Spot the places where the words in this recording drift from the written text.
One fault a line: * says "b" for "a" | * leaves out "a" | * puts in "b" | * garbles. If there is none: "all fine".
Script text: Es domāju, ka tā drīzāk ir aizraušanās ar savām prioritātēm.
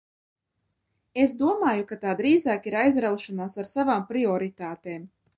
all fine